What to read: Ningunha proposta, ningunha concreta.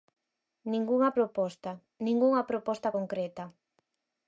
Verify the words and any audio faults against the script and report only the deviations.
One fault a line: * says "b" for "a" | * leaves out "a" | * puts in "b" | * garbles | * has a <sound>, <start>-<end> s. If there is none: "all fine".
* puts in "proposta"